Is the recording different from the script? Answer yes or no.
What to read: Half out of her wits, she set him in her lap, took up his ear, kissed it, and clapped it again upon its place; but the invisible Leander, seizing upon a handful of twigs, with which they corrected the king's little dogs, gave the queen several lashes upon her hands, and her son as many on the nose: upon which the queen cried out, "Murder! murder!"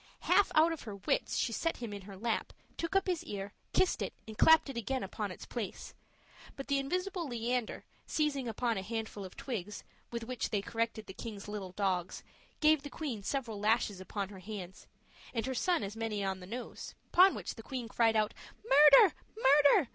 no